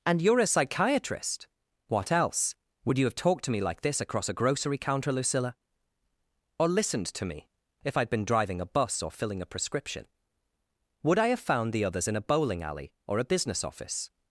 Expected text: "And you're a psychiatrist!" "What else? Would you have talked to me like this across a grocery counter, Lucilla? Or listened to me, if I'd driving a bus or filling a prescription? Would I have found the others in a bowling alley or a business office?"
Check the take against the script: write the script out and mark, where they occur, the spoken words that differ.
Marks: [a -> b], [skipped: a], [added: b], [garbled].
"And you're a psychiatrist!" "What else? Would you have talked to me like this across a grocery counter, Lucilla? Or listened to me, if I'd [added: been] driving a bus or filling a prescription? Would I have found the others in a bowling alley or a business office?"